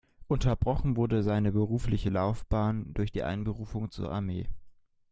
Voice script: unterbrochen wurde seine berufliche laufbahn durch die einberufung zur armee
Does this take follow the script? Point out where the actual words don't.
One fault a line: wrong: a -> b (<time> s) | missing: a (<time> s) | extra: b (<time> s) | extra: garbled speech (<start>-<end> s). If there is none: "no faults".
no faults